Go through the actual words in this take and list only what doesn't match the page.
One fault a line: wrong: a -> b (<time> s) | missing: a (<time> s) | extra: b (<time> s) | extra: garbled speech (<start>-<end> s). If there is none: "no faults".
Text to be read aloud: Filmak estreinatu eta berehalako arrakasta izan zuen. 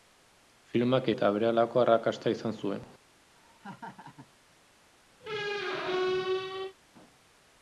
missing: estreinatu (1.1 s)